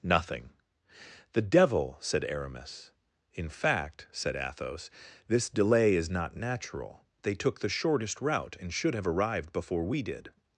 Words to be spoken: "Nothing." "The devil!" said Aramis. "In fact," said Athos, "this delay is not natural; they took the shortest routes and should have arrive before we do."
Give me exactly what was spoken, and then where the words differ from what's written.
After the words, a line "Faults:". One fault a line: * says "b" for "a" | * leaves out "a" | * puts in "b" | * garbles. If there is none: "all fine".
"Nothing." "The devil!" said Aramis. "In fact," said Athos, "this delay is not natural; they took the shortest route and should have arrived before we did."
Faults:
* says "route" for "routes"
* says "arrived" for "arrive"
* says "did" for "do"